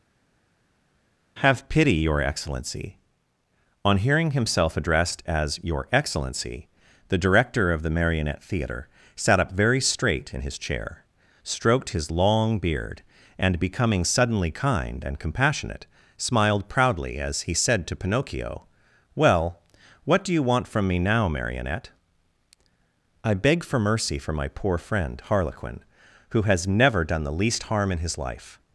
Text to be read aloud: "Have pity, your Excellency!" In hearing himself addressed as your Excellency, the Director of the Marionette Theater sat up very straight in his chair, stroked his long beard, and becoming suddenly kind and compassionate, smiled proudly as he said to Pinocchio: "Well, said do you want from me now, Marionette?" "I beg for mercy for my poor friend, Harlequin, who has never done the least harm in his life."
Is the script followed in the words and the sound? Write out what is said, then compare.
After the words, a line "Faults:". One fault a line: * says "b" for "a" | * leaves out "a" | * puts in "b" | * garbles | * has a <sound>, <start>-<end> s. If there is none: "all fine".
"Have pity, your Excellency!" On hearing himself addressed as your Excellency, the Director of the Marionette Theater sat up very straight in his chair, stroked his long beard, and becoming suddenly kind and compassionate, smiled proudly as he said to Pinocchio: "Well, what do you want from me now, Marionette?" "I beg for mercy for my poor friend, Harlequin, who has never done the least harm in his life."
Faults:
* says "On" for "In"
* says "what" for "said"